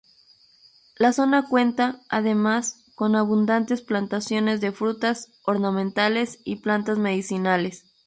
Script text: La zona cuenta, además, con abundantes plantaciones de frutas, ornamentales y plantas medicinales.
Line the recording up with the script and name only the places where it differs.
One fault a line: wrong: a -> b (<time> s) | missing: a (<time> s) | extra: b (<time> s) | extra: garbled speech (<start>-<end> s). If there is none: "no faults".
no faults